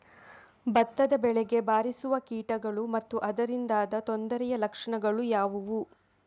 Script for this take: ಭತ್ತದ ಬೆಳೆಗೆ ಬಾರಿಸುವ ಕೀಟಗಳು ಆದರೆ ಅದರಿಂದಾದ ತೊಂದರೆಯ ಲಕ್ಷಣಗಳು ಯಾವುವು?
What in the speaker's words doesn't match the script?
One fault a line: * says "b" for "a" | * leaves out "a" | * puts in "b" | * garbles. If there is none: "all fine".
* says "ಮತ್ತು" for "ಆದರೆ"